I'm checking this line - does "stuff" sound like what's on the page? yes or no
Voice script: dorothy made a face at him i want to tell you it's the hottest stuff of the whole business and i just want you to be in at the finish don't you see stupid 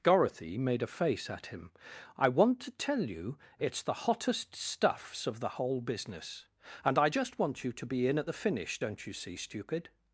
no